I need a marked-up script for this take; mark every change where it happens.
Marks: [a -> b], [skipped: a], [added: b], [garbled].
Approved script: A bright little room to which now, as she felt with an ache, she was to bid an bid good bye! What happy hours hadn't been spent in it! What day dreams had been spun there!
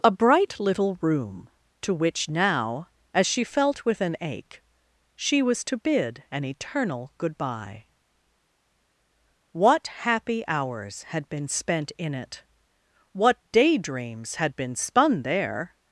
A bright little room to which now, as she felt with an ache, she was to bid an [bid -> eternal] good bye! What happy hours [hadn't -> had] been spent in it! What day dreams had been spun there!